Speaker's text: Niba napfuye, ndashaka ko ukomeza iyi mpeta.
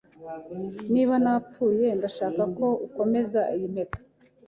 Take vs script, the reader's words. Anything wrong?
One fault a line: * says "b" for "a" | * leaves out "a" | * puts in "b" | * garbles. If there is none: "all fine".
all fine